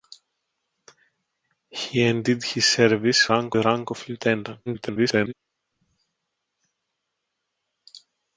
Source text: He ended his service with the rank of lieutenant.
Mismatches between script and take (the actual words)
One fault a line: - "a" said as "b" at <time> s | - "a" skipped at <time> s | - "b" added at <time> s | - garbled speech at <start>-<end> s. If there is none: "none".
- "with" said as "rank" at 3.3 s
- garbled speech at 4.7-5.3 s